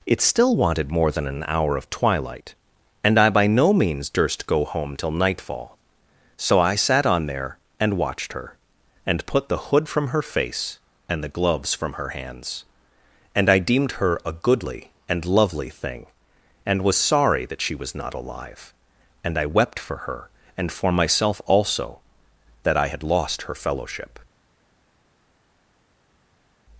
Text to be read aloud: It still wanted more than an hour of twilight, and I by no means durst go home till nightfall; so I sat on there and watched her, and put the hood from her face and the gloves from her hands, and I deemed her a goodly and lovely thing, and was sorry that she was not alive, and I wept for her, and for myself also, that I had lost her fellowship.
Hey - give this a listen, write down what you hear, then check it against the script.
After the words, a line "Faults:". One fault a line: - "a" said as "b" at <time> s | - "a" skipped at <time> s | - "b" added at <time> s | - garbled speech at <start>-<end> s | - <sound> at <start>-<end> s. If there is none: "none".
It still wanted more than an hour of twilight, and I by no means durst go home till nightfall; so I sat on there and watched her, and put the hood from her face and the gloves from her hands, and I deemed her a goodly and lovely thing, and was sorry that she was not alive, and I wept for her, and for myself also, that I had lost her fellowship.
Faults:
none